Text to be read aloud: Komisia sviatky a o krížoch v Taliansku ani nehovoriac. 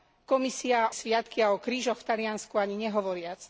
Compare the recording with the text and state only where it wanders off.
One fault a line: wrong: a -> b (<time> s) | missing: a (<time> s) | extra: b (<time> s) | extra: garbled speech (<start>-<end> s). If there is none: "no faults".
no faults